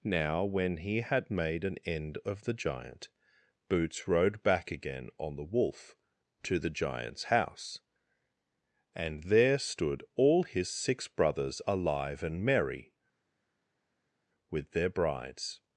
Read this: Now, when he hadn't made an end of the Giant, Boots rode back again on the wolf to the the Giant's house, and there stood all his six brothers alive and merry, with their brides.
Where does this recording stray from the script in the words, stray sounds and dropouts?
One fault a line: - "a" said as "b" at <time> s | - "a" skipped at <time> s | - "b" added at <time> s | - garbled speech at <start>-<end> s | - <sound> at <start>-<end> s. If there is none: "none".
- "hadn't" said as "had" at 1.0 s
- "the" skipped at 6.7 s